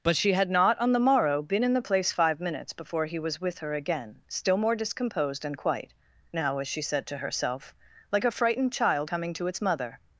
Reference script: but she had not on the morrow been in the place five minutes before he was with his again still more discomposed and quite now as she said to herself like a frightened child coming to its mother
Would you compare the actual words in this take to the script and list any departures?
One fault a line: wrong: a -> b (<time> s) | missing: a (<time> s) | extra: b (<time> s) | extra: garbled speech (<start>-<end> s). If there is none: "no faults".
wrong: his -> her (3.6 s)